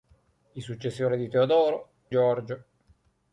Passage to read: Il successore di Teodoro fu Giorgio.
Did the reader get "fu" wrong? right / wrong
wrong